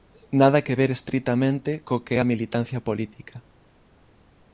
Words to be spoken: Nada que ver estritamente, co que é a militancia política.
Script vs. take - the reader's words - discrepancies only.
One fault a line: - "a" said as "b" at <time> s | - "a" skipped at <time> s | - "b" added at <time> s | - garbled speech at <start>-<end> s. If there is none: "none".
none